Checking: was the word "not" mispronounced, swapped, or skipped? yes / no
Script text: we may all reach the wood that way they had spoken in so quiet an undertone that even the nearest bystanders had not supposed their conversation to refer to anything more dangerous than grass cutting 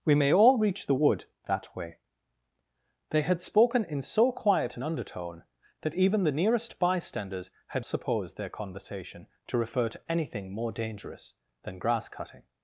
yes